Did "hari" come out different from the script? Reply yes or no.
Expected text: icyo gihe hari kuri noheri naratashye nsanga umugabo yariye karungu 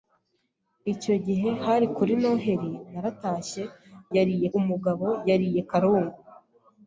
no